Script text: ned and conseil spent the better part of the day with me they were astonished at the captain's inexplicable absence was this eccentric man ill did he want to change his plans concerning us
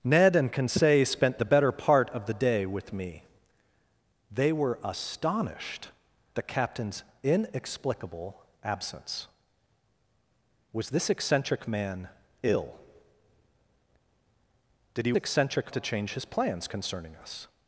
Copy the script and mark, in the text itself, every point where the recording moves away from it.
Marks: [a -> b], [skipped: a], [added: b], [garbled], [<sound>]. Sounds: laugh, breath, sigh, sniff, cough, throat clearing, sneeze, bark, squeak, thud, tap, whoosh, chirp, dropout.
ned and conseil spent the better part of the day with me they were astonished [skipped: at] the captain's inexplicable absence was this eccentric man ill did he [want -> eccentric] to change his plans concerning us